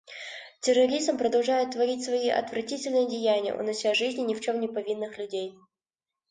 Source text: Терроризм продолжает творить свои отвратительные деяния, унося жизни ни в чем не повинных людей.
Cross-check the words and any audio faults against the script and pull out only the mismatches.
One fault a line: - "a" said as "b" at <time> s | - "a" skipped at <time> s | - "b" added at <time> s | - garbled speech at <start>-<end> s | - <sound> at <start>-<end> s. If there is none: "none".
none